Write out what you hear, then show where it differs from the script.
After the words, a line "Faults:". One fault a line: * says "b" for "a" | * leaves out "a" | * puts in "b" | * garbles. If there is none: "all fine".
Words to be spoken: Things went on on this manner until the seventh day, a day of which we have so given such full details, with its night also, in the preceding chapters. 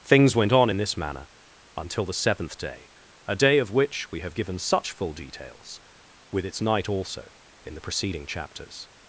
Things went on in this manner until the seventh day, a day of which we have given such full details, with its night also, in the preceding chapters.
Faults:
* says "in" for "on"
* leaves out "so"